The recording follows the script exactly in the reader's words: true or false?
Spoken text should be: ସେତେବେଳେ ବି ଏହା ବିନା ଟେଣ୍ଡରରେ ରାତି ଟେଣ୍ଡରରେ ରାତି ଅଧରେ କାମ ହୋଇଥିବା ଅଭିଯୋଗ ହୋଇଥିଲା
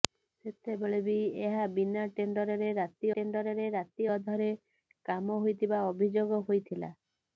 true